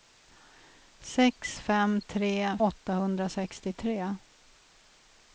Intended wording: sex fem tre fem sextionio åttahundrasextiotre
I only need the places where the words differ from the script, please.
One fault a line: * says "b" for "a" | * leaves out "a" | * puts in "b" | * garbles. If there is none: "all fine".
* leaves out "fem sextionio"